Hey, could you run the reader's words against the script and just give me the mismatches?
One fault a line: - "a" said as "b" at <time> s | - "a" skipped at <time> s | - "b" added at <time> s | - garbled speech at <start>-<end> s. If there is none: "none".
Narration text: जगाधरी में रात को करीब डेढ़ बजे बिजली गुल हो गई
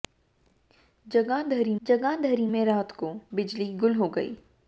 - "जगाधरी" added at 1.8 s
- "करीब डेढ़ बजे" skipped at 3.1 s